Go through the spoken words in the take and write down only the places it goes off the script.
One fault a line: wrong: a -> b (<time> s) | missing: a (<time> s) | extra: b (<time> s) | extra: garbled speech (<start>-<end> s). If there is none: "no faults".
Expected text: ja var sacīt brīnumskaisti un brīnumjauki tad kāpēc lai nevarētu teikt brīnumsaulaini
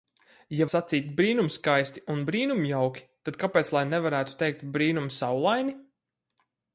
missing: var (0.7 s)